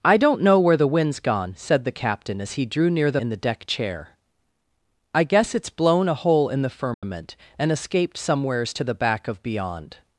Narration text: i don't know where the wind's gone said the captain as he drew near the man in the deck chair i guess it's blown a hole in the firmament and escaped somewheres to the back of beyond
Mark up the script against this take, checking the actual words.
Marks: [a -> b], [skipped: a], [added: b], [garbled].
i don't know where the wind's gone said the captain as he drew near the [skipped: man] in the deck chair i guess it's blown a hole in the firmament and escaped somewheres to the back of beyond